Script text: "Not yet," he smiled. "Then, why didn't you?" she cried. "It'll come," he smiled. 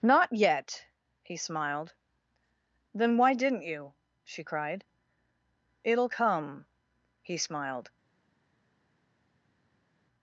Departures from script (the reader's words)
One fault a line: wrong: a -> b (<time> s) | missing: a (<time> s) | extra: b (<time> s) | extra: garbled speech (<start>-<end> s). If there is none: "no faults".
no faults